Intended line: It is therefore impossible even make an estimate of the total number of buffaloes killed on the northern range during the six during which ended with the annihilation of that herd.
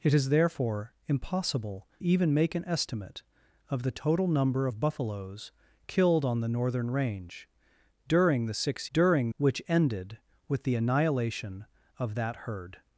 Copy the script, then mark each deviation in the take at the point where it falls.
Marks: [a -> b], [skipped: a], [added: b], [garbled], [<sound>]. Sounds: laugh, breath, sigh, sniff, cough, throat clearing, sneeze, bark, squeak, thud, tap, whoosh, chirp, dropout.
It is therefore impossible even make an estimate of the total number of buffaloes killed on the northern range during the six during which ended with the annihilation of that herd.